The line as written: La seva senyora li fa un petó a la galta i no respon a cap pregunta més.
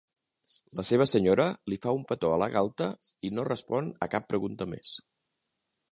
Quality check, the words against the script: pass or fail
pass